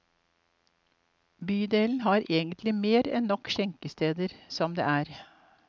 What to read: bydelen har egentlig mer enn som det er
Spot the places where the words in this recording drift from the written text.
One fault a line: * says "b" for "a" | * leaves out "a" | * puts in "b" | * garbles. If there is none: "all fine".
* puts in "nok skjenkesteder"